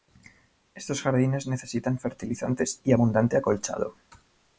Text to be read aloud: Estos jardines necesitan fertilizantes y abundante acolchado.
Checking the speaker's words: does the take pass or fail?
pass